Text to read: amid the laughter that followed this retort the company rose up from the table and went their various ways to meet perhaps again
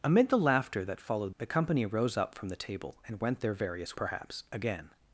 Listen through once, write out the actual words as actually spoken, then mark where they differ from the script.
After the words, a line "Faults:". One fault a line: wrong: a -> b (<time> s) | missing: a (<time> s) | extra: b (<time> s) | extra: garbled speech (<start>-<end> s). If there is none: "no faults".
amid the laughter that followed the company rose up from the table and went their various perhaps again
Faults:
missing: this retort (1.3 s)
missing: ways to meet (4.0 s)